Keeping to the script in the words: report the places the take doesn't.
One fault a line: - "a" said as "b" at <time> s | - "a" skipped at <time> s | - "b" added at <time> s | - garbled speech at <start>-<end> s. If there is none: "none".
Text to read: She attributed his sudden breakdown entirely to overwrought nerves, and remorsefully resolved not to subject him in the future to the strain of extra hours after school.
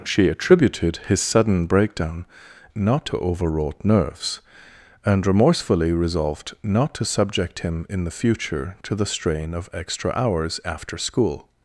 - "entirely" said as "not" at 2.7 s